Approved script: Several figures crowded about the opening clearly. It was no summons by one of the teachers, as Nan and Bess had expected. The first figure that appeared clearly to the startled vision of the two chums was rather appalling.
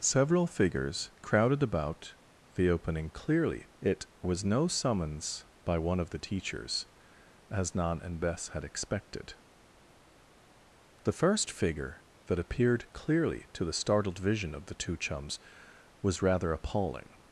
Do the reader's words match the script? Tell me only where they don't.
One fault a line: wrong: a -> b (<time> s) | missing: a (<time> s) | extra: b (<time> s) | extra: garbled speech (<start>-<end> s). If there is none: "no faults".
no faults